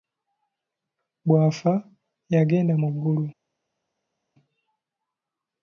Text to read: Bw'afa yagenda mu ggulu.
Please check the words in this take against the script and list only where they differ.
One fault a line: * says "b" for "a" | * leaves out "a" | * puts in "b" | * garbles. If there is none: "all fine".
all fine